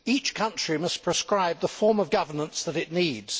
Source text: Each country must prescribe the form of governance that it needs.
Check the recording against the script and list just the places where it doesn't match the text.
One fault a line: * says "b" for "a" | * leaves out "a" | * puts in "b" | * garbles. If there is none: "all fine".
all fine